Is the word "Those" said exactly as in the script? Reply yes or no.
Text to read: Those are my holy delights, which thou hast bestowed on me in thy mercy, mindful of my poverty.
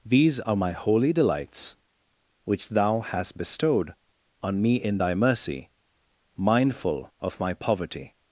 no